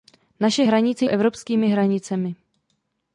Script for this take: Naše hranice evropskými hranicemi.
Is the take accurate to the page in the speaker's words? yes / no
yes